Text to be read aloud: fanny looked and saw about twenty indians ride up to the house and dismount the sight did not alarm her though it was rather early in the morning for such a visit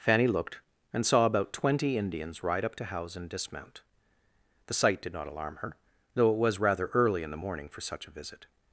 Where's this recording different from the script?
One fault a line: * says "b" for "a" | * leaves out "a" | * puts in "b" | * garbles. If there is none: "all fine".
* leaves out "the"